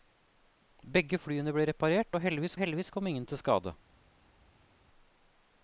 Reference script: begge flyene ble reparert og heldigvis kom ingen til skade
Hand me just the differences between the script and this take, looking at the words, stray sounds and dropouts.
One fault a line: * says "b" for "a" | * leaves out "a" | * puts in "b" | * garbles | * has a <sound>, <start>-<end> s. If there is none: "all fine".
* puts in "heldigvis"